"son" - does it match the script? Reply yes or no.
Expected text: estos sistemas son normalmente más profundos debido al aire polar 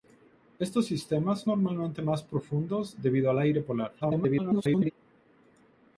no